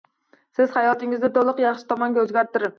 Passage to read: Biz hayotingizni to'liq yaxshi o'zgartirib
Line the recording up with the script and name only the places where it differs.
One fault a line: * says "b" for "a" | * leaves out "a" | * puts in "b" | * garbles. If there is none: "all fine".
* says "Siz" for "Biz"
* puts in "tomonga"